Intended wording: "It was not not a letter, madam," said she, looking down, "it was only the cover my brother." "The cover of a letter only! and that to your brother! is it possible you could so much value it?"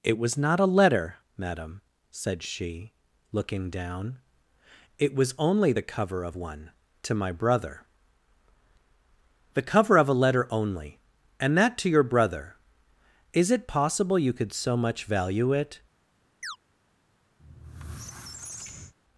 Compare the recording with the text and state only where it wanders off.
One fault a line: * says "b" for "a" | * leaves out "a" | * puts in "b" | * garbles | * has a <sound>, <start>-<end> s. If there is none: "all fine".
* leaves out "not"
* puts in "of one to"
* has a chirp, 16.4-16.6 s
* has a squeak, 17.4-18.9 s